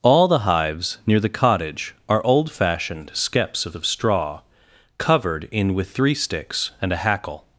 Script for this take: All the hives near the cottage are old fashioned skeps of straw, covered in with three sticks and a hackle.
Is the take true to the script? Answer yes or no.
no